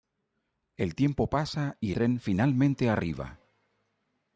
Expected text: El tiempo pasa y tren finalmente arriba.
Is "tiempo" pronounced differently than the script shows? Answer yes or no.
no